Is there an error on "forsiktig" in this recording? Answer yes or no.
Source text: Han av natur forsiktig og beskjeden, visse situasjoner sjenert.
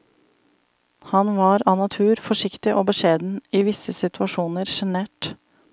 no